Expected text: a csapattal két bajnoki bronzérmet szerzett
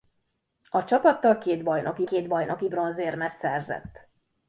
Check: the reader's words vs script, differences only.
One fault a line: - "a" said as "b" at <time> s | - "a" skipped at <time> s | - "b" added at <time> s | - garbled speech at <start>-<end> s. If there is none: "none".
- "két bajnoki" added at 2.0 s